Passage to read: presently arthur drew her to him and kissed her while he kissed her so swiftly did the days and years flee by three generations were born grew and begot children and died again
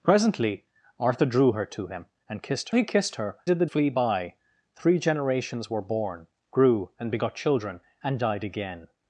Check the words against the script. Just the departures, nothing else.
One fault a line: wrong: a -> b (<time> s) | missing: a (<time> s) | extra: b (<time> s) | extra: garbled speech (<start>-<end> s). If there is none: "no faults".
missing: her while (2.7 s)
missing: so swiftly (3.4 s)
missing: days and years (3.7 s)